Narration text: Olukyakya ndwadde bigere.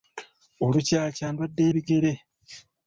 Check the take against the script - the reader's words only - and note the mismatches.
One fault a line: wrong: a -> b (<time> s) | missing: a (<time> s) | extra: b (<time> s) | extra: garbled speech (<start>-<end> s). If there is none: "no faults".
no faults